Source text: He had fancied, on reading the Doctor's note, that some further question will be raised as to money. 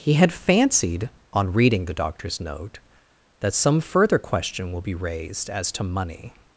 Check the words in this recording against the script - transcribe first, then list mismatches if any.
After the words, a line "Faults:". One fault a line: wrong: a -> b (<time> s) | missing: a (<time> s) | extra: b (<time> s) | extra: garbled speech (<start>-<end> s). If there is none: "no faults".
He had fancied, on reading the Doctor's note, that some further question will be raised as to money.
Faults:
no faults